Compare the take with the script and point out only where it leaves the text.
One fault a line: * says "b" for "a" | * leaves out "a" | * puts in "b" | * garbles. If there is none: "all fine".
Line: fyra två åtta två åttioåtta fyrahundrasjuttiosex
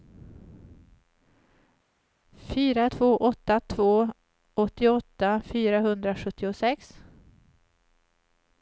all fine